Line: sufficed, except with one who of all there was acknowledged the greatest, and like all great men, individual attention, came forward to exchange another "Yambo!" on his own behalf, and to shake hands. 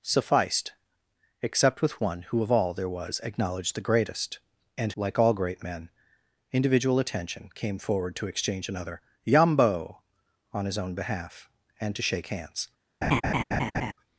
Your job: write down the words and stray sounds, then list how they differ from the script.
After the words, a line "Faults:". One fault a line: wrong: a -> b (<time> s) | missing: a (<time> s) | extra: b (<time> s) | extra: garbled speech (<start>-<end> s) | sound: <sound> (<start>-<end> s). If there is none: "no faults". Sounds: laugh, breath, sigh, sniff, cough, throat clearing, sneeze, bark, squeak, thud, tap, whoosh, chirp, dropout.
sufficed, except with one who of all there was acknowledged the greatest, and like all great men, individual attention, came forward to exchange another "Yambo!" on his own behalf, and to shake hands.
Faults:
sound: laugh (13.0-13.9 s)